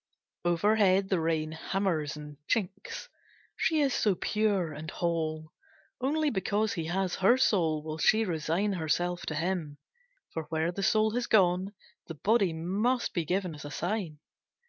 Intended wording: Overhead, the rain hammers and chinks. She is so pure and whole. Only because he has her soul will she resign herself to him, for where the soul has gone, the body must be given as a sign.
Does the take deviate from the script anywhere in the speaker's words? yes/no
no